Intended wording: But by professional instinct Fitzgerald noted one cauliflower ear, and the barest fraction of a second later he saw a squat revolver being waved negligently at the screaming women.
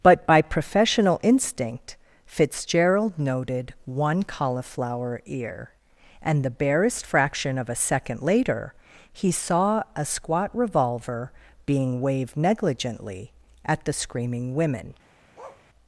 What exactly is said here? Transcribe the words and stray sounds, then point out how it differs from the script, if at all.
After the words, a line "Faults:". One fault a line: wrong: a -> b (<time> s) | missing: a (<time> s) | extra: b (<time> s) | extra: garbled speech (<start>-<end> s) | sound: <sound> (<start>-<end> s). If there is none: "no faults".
But by professional instinct Fitzgerald noted one cauliflower ear, and the barest fraction of a second later he saw a squat revolver being waved negligently at the screaming women.
Faults:
sound: bark (15.3-15.6 s)